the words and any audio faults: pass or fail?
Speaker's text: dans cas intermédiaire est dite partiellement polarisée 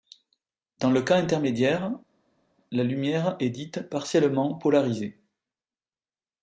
fail